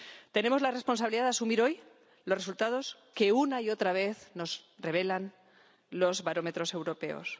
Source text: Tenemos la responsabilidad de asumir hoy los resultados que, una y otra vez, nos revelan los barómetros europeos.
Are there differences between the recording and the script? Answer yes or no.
no